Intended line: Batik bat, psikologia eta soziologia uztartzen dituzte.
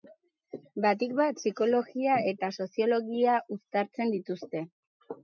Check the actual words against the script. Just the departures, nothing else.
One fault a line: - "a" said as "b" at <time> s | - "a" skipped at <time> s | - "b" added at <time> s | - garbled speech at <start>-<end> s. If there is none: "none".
none